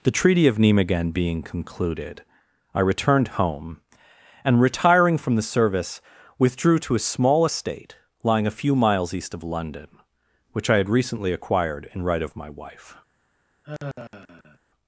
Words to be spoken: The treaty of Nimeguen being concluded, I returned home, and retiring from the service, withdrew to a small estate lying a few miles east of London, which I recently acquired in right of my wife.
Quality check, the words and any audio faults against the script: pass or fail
fail